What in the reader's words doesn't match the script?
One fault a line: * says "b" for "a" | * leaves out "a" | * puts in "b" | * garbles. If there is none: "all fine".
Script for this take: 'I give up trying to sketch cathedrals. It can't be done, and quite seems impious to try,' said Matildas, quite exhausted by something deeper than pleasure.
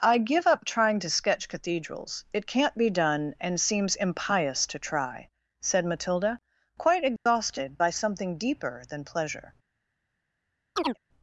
* leaves out "quite"
* says "Matilda" for "Matildas"